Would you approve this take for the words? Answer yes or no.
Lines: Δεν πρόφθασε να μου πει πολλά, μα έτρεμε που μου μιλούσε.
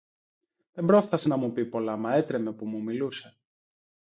yes